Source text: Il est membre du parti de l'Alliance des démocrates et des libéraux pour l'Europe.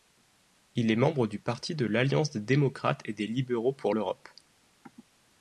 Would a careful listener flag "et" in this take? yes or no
no